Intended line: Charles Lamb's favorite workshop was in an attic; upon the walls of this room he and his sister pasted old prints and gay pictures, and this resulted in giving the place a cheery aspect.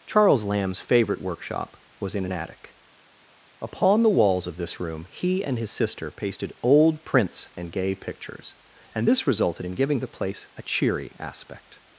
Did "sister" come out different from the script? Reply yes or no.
no